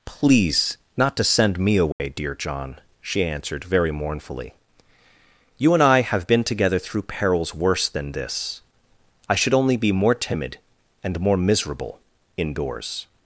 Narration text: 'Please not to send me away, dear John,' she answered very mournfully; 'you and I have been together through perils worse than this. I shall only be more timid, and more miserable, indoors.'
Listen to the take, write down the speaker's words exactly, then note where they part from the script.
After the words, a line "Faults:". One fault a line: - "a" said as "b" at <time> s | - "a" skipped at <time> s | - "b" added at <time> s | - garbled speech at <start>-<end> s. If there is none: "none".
'Please not to send me away, dear John,' she answered very mournfully; 'you and I have been together through perils worse than this. I should only be more timid, and more miserable, indoors.'
Faults:
- "shall" said as "should" at 9.3 s